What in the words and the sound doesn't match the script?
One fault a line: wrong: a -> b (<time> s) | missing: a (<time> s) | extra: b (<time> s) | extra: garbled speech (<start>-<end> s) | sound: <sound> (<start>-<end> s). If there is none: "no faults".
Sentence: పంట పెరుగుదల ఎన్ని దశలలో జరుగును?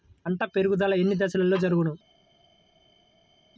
no faults